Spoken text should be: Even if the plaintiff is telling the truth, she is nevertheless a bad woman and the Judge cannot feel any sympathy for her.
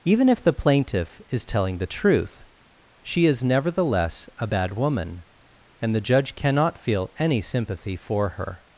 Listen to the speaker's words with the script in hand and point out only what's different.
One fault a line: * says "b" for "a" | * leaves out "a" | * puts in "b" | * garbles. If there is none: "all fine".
all fine